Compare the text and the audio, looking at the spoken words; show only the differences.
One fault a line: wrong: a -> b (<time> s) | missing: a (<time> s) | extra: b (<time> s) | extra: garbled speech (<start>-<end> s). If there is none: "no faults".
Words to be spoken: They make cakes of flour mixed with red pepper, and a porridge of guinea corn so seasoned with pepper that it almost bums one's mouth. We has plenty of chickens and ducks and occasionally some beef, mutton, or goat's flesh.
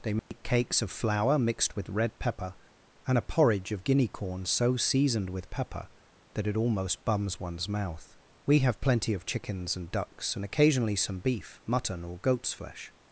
wrong: has -> have (8.6 s)